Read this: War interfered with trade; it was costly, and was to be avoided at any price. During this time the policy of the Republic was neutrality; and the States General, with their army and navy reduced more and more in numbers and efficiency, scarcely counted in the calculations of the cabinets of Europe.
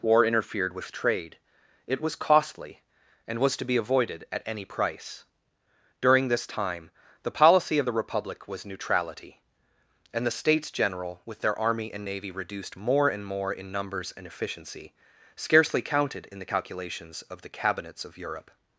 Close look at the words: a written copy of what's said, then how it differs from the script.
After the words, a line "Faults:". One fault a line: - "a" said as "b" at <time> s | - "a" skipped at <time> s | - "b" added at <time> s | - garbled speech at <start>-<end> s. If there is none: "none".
War interfered with trade; it was costly, and was to be avoided at any price. During this time the policy of the Republic was neutrality; and the States General, with their army and navy reduced more and more in numbers and efficiency, scarcely counted in the calculations of the cabinets of Europe.
Faults:
none